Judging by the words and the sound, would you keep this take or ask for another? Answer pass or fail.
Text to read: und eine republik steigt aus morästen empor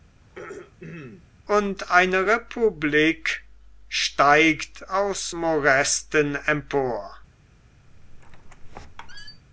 fail